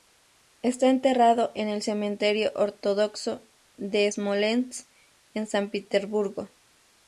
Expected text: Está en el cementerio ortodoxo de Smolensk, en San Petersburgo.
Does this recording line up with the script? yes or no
no